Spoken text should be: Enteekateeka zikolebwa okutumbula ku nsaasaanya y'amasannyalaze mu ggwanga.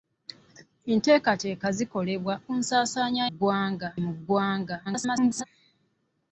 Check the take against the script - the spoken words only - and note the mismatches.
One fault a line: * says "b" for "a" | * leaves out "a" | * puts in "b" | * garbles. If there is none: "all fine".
* leaves out "okutumbula"
* says "ggwanga" for "y'amasannyalaze"
* garbles